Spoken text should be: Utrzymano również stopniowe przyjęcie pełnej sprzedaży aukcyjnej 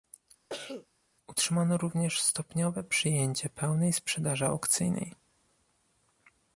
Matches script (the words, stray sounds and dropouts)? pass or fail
fail